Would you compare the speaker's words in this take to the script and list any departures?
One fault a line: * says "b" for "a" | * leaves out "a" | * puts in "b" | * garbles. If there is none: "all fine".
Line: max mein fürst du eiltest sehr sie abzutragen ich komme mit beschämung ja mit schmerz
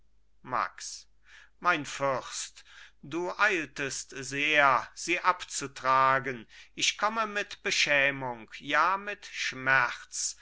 all fine